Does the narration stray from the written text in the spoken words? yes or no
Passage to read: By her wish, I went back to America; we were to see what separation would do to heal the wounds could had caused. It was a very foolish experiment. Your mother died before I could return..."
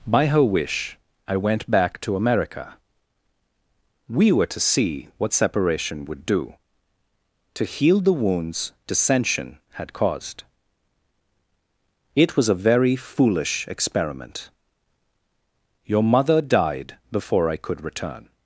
yes